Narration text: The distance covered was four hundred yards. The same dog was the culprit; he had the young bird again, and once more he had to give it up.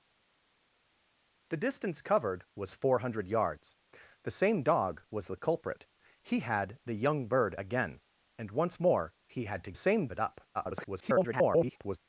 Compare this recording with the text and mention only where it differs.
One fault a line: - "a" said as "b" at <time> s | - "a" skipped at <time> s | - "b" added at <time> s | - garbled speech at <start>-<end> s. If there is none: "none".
- "give" said as "same" at 9.7 s
- garbled speech at 10.5-12.0 s